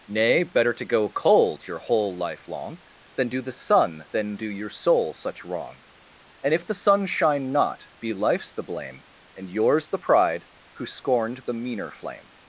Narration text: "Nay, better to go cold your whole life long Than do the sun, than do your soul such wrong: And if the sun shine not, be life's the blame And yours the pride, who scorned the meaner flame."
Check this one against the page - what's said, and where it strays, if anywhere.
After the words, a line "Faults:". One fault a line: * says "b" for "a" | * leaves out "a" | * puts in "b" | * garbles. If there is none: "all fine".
"Nay, better to go cold your whole life long Than do the sun, than do your soul such wrong: And if the sun shine not, be life's the blame And yours the pride, who scorned the meaner flame."
Faults:
all fine